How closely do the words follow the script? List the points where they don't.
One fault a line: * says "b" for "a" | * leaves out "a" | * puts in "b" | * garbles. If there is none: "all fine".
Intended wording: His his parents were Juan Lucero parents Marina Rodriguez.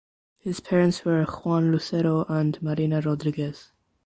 * leaves out "his"
* says "and" for "parents"